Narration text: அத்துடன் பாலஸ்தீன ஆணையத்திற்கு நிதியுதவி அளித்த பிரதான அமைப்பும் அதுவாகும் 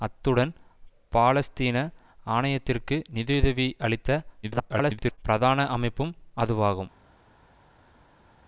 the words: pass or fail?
fail